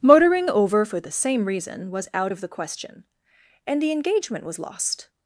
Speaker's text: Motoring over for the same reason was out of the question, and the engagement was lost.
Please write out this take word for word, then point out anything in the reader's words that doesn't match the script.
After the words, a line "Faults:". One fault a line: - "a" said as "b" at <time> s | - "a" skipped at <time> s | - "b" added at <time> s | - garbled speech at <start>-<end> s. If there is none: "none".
Motoring over for the same reason was out of the question, and the engagement was lost.
Faults:
none